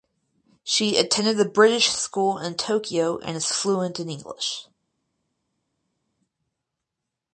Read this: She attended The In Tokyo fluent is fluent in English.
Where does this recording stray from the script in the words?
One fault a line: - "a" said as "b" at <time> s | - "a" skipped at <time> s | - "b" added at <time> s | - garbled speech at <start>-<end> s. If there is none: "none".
- "British School" added at 1.4 s
- "fluent" said as "and" at 3.2 s